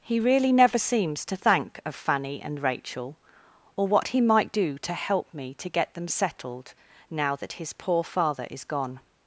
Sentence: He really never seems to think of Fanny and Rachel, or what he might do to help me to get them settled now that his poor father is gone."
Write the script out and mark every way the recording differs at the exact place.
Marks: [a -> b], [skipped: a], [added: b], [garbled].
He really never seems to [think -> thank] of Fanny and Rachel, or what he might do to help me to get them settled now that his poor father is gone."